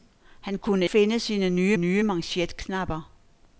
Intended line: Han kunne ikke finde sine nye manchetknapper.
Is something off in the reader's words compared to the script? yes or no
yes